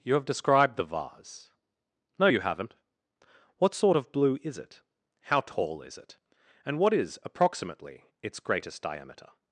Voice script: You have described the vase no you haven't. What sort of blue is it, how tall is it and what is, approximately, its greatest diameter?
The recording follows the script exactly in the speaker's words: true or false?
true